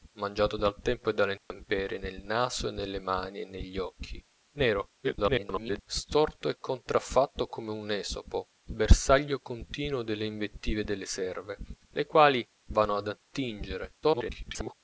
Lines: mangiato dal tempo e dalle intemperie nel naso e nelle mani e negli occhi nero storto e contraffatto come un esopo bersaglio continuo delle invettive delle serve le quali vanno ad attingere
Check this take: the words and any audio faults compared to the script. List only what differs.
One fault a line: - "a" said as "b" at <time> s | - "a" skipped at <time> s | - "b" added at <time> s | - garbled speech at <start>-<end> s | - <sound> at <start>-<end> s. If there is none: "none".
- dropout at 1.4-1.5 s
- garbled speech at 5.0-5.8 s
- garbled speech at 14.0-14.7 s